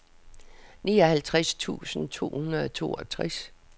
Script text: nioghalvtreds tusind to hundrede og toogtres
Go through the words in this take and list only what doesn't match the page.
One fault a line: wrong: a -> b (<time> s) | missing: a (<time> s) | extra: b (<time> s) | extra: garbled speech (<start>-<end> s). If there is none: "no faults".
no faults